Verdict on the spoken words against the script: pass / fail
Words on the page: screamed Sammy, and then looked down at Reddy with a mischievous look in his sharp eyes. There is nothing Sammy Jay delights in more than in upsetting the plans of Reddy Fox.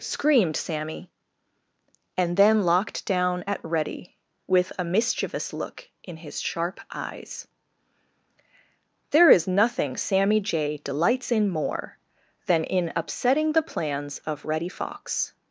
fail